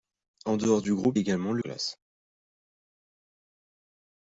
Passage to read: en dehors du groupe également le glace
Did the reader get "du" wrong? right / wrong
right